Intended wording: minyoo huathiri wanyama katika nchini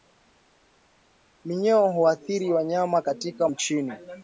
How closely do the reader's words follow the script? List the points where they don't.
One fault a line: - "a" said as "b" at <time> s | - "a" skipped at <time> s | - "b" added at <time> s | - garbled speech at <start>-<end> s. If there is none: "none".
none